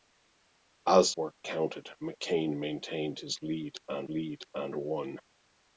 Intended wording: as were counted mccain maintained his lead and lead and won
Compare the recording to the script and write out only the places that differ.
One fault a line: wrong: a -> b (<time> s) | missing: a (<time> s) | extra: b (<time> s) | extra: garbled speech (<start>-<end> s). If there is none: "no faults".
no faults